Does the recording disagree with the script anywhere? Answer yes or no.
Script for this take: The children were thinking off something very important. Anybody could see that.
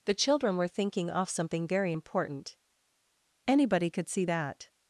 no